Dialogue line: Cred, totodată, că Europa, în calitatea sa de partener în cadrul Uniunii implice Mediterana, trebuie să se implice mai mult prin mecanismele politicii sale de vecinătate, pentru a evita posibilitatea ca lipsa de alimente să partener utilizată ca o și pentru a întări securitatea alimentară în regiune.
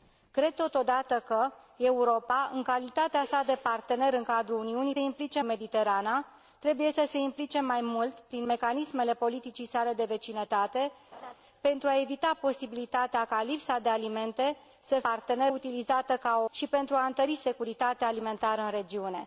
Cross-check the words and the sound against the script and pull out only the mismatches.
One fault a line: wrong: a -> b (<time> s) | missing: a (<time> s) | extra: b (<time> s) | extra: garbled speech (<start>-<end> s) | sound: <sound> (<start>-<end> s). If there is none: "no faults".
sound: laugh (11.1-11.3 s)